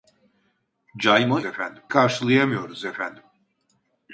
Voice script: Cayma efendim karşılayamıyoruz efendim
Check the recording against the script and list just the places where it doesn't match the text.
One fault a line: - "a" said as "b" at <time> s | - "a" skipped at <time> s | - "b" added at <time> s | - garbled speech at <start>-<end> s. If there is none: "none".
none